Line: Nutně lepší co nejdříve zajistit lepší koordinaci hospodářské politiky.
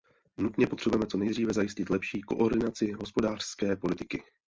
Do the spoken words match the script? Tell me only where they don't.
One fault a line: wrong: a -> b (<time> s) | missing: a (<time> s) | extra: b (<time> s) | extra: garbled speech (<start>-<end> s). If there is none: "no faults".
wrong: lepší -> potřebujeme (0.7 s)